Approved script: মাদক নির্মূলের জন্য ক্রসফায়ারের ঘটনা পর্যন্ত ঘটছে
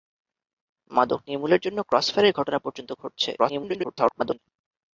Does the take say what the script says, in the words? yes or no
no